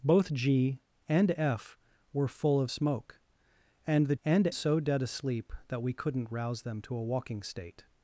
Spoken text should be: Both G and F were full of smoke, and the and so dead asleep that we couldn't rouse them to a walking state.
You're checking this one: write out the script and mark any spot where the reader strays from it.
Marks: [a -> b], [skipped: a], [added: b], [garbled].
Both G and F were full of smoke, and the and so dead asleep that we couldn't rouse them to a walking state.